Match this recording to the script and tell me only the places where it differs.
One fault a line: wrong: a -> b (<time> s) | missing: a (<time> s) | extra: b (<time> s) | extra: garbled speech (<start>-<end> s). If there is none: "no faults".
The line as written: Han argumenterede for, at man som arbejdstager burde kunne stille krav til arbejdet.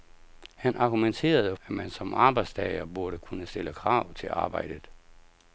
missing: for (1.6 s)